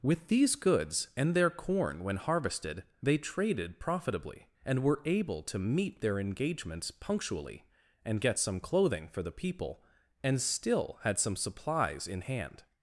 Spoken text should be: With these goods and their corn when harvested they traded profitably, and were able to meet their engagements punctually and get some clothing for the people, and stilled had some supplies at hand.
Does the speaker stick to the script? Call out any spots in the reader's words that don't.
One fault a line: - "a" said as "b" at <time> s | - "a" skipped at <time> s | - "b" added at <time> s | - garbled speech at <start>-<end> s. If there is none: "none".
- "stilled" said as "still" at 10.4 s
- "at" said as "in" at 12.1 s